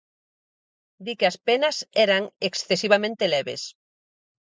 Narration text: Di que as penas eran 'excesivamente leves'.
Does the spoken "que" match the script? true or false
true